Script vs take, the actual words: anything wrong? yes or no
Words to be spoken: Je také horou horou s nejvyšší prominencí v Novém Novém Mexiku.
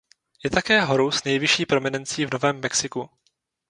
yes